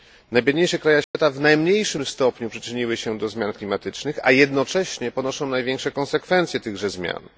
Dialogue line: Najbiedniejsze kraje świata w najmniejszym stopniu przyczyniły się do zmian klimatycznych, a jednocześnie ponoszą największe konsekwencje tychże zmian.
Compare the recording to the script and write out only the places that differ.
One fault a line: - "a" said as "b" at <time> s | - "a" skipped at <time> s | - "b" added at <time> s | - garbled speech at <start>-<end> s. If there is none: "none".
none